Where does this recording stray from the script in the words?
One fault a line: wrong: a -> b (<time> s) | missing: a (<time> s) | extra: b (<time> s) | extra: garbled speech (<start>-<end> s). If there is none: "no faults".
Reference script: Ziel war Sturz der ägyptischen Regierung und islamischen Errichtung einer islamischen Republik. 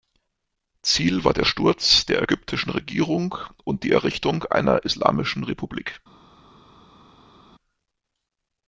extra: der (1.3 s)
wrong: islamischen -> die (3.8 s)